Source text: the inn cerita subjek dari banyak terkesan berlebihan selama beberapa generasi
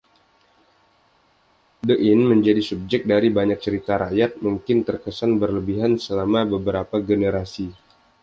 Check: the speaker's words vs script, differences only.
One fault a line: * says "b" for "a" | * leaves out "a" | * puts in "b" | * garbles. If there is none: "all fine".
* says "menjadi" for "cerita"
* puts in "cerita rakyat mungkin"